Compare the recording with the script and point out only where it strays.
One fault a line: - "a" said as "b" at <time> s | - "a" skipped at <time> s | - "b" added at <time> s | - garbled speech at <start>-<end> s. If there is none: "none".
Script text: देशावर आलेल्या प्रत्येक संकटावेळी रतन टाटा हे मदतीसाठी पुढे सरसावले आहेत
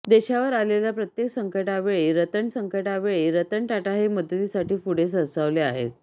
- "संकटावेळी रतन" added at 2.5 s